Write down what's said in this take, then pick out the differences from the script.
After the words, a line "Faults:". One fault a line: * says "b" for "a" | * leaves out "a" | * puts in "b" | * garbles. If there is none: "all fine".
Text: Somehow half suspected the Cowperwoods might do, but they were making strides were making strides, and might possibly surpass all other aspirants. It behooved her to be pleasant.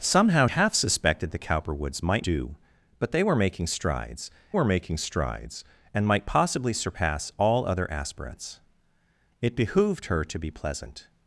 Somehow half suspected the Cowperwoods might do, but they were making strides were making strides, and might possibly surpass all other aspirants. It behooved her to be pleasant.
Faults:
all fine